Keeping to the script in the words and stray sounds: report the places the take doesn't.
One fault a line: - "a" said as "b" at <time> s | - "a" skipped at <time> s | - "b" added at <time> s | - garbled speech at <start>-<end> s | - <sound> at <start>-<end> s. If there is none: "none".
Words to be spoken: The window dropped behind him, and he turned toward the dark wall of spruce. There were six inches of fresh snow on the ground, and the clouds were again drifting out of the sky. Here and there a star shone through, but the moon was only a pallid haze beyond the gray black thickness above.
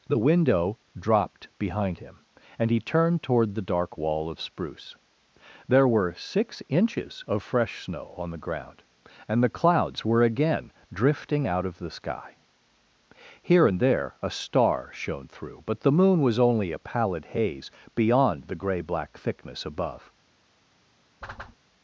- whoosh at 21.2-21.6 s